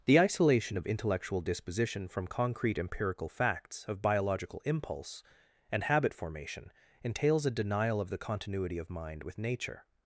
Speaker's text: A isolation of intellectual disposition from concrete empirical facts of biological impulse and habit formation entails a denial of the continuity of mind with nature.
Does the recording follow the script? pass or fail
fail